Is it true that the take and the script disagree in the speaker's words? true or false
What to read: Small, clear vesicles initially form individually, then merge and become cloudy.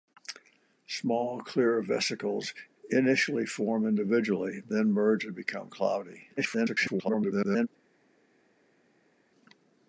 true